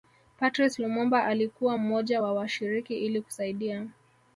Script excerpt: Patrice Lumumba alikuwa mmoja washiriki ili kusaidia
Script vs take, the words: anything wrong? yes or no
yes